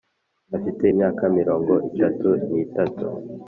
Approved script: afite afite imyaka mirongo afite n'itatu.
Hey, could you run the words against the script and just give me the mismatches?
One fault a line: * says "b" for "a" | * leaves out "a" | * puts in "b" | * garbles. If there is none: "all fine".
* leaves out "afite"
* says "itatu" for "afite"